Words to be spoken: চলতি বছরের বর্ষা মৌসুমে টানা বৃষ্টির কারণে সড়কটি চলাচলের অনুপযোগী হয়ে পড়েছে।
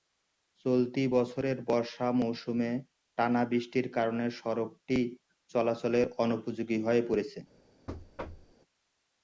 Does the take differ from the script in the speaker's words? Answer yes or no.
no